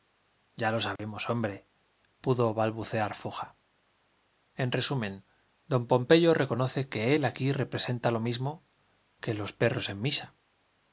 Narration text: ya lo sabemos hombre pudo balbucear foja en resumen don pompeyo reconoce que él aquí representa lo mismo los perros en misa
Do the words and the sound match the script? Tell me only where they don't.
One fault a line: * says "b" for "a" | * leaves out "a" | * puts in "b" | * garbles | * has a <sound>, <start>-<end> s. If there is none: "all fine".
* has a dropout, 1.0-1.0 s
* puts in "que"